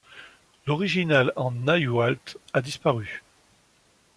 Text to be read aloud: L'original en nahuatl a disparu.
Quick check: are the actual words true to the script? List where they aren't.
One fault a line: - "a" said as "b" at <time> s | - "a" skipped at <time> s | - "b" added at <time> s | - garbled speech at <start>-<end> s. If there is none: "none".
none